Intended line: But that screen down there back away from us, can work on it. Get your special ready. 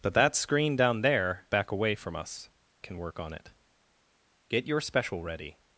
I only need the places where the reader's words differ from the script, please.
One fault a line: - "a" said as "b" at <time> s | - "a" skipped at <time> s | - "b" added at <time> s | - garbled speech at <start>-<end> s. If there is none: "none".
none